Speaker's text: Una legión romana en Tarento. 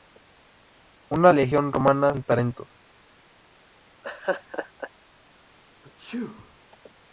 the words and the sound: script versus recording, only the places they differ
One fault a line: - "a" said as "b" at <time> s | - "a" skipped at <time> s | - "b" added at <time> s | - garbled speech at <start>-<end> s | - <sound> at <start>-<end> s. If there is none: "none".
- laugh at 4.0-4.9 s
- sneeze at 5.8-6.6 s